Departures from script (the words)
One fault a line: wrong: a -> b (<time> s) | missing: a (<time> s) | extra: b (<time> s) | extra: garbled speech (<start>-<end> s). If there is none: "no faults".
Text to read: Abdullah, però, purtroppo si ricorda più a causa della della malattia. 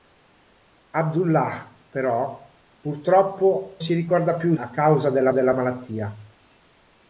no faults